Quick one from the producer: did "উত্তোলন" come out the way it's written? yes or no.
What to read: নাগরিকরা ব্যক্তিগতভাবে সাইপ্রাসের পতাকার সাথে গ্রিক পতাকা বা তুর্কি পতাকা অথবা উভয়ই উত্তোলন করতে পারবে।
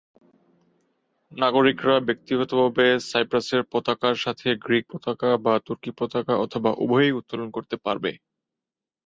yes